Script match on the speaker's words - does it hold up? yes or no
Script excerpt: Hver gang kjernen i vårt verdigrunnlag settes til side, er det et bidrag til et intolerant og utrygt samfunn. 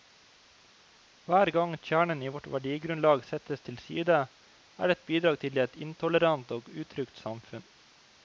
yes